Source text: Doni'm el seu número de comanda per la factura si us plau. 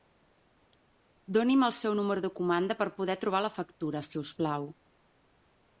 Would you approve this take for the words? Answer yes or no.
no